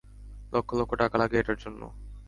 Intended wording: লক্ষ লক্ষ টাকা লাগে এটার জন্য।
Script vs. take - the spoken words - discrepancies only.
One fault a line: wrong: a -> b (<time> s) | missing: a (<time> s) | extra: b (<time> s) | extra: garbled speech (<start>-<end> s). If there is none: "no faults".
no faults